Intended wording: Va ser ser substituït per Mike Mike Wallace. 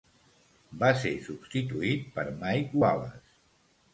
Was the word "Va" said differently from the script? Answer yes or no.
no